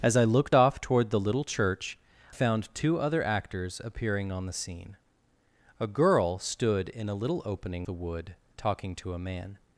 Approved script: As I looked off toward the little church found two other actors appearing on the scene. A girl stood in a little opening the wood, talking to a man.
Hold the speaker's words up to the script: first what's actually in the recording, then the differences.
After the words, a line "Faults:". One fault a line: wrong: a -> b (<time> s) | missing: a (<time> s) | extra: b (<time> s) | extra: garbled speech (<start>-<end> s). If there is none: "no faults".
As I looked off toward the little church found two other actors appearing on the scene. A girl stood in a little opening the wood, talking to a man.
Faults:
no faults